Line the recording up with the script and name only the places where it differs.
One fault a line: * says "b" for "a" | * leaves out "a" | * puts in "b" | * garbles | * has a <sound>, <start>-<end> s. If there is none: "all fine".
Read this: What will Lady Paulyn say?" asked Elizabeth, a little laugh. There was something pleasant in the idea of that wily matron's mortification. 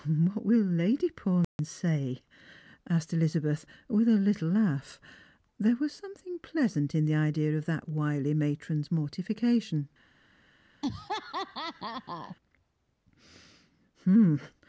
* has a dropout, 1.4-1.6 s
* puts in "with"
* has a laugh, 10.8-12.4 s